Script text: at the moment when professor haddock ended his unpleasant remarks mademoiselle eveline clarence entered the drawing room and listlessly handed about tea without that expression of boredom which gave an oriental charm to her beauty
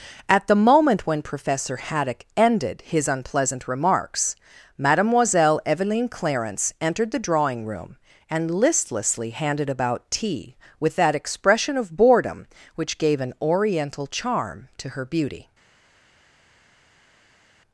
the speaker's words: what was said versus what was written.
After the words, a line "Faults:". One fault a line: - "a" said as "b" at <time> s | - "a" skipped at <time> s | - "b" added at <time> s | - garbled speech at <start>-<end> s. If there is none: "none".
at the moment when professor haddock ended his unpleasant remarks mademoiselle eveline clarence entered the drawing room and listlessly handed about tea with that expression of boredom which gave an oriental charm to her beauty
Faults:
- "without" said as "with" at 10.8 s